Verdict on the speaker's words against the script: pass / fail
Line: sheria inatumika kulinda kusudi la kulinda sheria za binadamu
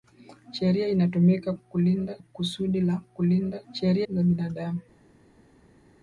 pass